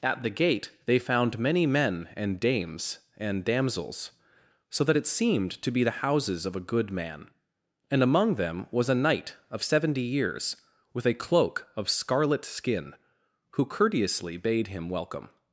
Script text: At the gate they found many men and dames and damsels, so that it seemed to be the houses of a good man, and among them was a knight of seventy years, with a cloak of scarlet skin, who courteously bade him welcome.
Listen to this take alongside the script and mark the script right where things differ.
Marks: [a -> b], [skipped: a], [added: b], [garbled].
At the gate they found many men and dames and damsels, so that it seemed to be the houses of a good man, and among them was a knight of seventy years, with a cloak of scarlet skin, who courteously bade him welcome.